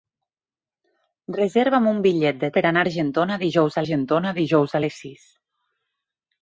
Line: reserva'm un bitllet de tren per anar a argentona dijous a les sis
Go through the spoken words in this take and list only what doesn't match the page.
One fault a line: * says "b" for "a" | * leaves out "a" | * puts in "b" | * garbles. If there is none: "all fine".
* leaves out "tren"
* puts in "argentona dijous"